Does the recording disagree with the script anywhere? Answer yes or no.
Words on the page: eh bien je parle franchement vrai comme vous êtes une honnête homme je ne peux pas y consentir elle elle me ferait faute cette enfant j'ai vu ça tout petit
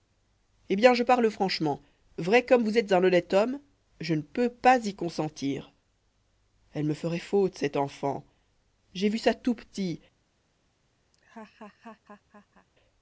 yes